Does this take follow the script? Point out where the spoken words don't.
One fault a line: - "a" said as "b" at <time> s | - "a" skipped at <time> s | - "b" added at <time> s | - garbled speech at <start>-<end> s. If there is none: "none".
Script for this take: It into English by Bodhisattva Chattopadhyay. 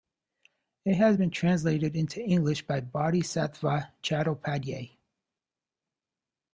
- "has been translated" added at 0.9 s